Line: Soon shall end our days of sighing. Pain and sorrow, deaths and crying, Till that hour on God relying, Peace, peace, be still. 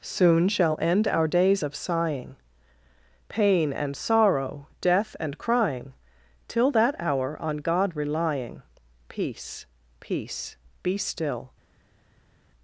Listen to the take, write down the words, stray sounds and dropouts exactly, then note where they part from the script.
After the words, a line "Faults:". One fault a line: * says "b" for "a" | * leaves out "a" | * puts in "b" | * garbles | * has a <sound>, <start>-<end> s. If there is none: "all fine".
Soon shall end our days of sighing. Pain and sorrow, death and crying, Till that hour on God relying, Peace, peace, be still.
Faults:
* says "death" for "deaths"